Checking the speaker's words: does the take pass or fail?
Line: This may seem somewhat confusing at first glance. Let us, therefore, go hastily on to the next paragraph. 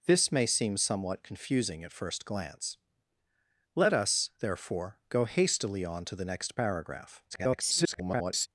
fail